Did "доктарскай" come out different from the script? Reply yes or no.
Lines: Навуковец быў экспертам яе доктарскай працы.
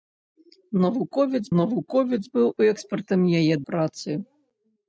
yes